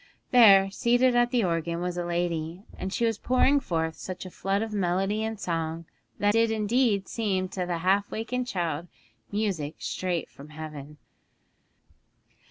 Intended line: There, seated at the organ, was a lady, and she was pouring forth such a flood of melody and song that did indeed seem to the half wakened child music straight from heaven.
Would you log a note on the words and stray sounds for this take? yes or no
no